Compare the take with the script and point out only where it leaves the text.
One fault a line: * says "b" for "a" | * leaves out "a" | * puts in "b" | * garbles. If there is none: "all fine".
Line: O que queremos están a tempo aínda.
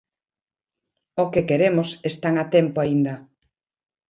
all fine